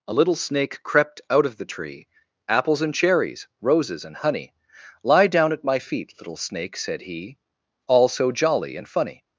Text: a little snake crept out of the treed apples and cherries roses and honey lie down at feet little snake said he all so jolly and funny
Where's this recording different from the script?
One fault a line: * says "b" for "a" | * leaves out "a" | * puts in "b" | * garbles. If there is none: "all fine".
* says "tree" for "treed"
* puts in "my"